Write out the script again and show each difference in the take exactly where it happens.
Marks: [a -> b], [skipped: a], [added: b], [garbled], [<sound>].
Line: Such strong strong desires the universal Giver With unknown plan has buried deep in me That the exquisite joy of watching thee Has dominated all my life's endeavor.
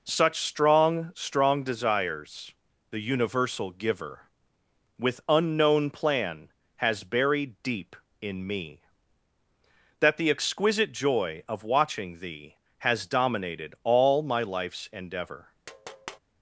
Such strong strong desires the universal Giver With unknown plan has buried deep in me That the exquisite joy of watching thee Has dominated all my life's endeavor. [tap]